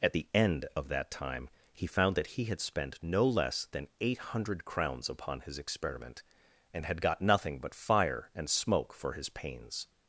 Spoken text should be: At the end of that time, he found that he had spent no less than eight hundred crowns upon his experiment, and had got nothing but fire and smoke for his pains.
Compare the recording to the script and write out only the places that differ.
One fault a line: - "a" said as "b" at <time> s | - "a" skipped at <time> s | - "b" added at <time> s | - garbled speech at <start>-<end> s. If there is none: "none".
none